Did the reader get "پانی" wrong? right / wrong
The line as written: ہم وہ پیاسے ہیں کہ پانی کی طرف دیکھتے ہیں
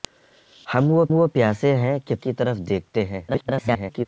wrong